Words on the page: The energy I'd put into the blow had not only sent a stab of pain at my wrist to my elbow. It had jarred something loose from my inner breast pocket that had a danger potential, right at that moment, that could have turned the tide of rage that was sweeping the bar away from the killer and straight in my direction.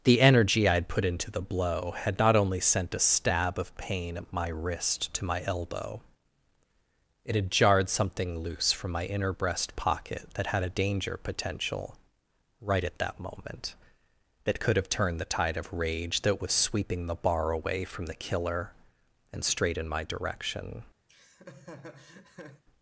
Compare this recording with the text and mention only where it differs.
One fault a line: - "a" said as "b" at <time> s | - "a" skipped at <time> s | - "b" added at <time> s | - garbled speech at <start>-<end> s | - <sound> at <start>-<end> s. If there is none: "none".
- laugh at 21.1-22.6 s